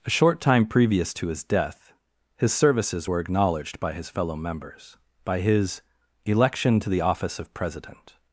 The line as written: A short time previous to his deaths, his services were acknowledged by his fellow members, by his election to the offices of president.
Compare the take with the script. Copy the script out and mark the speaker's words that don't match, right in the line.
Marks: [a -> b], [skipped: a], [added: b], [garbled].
A short time previous to his [deaths, -> death] his services were acknowledged by his fellow members, by his election to the [offices -> office] of president.